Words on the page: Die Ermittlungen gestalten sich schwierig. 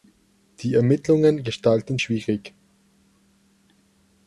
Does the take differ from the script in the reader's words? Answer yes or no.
yes